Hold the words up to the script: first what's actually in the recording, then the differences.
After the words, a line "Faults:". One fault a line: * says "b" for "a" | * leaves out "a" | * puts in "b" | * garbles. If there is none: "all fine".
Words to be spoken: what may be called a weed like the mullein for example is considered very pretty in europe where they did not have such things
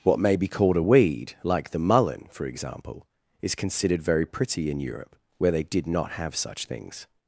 what may be called a weed like the mullein for example is considered very pretty in europe where they did not have such things
Faults:
all fine